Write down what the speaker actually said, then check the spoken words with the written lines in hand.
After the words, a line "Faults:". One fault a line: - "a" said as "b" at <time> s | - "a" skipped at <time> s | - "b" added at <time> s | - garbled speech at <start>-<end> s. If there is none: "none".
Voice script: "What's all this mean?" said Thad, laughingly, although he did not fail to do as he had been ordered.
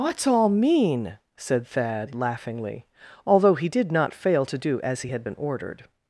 "What's all mean?" said Thad, laughingly, although he did not fail to do as he had been ordered.
Faults:
- "this" skipped at 0.5 s